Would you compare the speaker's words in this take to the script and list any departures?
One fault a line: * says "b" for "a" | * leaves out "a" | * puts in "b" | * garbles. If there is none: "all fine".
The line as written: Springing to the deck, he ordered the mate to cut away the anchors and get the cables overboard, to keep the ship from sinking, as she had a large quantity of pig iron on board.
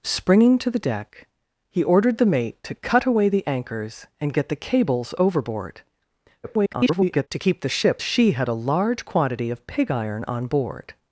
* garbles
* leaves out "from sinking as"